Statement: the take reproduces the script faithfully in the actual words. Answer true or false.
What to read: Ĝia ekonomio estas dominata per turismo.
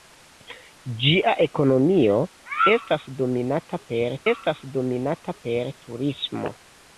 false